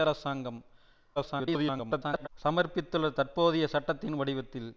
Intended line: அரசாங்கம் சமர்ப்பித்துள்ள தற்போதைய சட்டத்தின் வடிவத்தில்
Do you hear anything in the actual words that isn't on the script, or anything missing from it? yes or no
yes